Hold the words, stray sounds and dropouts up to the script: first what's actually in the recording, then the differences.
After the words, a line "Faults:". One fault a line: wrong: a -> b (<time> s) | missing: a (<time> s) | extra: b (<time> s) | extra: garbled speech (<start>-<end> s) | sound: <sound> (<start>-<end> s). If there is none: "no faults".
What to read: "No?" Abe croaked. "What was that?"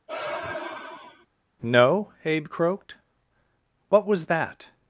"No?" Abe croaked. "What was that?"
Faults:
sound: sigh (0.1-1.3 s)